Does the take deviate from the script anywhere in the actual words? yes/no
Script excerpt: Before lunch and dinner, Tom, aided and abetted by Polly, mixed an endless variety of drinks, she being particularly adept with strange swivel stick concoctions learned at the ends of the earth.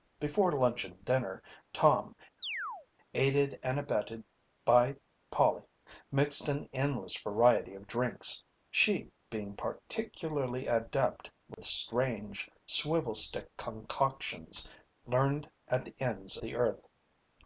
yes